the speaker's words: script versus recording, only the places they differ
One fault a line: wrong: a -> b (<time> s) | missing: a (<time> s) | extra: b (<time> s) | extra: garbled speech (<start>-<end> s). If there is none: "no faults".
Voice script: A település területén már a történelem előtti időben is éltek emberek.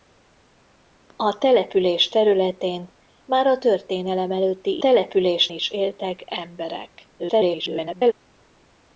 wrong: időben -> település (4.8 s)
extra: garbled speech (7.2-8.1 s)